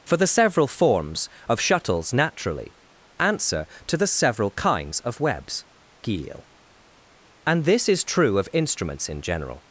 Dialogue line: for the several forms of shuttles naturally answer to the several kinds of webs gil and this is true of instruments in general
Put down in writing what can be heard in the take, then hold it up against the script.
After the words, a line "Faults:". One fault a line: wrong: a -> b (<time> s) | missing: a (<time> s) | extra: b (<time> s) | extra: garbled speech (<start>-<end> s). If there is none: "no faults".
for the several forms of shuttles naturally answer to the several kinds of webs gil and this is true of instruments in general
Faults:
no faults